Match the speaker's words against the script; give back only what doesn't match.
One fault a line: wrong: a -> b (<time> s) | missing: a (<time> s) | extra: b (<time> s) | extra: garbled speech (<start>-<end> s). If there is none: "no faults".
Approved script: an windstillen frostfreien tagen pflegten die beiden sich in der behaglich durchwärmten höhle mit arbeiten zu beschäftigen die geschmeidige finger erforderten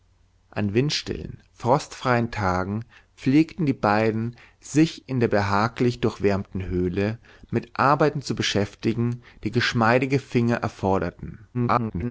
extra: garbled speech (11.5-12.1 s)